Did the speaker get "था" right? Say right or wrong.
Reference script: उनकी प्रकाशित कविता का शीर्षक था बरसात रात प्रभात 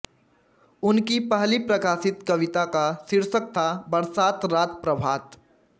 right